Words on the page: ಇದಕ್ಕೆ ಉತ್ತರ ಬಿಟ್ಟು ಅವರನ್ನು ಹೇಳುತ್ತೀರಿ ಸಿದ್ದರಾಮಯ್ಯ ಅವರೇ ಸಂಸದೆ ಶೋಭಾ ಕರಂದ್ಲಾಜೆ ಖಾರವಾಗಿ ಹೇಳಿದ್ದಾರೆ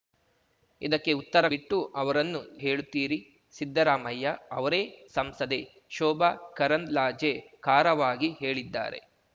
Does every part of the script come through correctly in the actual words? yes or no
yes